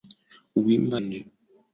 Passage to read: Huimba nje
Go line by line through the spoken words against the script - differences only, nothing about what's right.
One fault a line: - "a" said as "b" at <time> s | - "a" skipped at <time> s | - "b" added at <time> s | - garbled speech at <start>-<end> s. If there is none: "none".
none